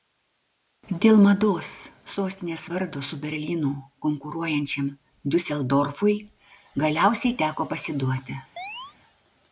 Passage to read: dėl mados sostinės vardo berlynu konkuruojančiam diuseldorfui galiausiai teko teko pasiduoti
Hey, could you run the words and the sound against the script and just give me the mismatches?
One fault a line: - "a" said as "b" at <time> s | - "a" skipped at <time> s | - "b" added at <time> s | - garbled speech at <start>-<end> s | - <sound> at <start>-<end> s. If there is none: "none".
- "su" added at 3.1 s
- "teko" skipped at 7.7 s
- chirp at 8.6-8.9 s